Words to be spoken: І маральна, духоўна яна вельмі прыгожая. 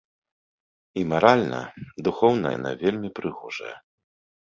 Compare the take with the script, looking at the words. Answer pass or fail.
pass